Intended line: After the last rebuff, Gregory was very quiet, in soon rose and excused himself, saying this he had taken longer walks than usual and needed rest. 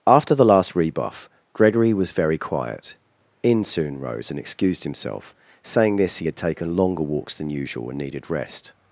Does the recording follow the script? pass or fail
pass